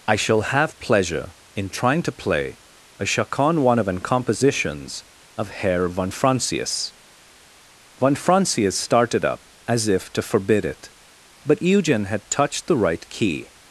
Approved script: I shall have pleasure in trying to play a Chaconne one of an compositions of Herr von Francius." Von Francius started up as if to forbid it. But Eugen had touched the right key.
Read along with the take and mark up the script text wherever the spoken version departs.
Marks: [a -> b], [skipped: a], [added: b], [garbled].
I shall have pleasure in trying to play a Chaconne one of an compositions of Herr von Francius." Von Francius started up as if to forbid it. But Eugen had touched the right key.